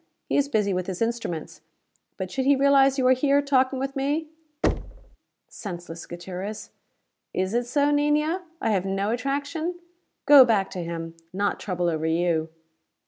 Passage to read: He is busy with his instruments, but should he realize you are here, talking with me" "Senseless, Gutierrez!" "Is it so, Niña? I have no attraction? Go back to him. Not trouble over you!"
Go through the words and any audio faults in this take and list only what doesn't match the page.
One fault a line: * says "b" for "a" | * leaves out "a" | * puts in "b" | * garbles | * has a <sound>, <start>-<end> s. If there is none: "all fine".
* has a thud, 4.6-5.2 s